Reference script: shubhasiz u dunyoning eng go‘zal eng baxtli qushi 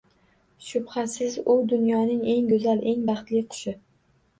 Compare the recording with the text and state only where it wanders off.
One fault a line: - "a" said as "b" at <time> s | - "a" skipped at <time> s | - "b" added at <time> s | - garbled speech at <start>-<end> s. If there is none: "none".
none